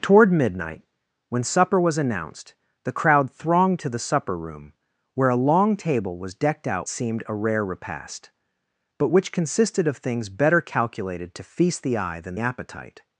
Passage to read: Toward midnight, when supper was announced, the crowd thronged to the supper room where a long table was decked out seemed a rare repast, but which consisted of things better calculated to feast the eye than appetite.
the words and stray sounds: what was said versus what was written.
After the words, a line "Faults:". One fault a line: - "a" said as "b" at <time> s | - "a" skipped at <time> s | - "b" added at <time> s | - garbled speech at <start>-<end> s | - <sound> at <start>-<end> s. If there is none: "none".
Toward midnight, when supper was announced, the crowd thronged to the supper room where a long table was decked out seemed a rare repast, but which consisted of things better calculated to feast the eye than appetite.
Faults:
none